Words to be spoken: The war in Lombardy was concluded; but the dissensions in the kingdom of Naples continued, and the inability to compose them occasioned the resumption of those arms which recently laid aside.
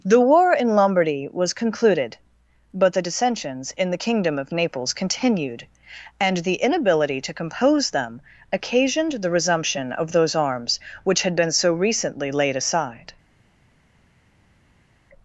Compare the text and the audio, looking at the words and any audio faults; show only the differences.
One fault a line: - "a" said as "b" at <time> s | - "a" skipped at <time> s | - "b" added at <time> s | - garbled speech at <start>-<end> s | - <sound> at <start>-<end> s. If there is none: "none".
- "had been so" added at 11.2 s